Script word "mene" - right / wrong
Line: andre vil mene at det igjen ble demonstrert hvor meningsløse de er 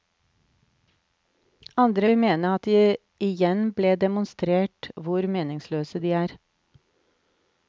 right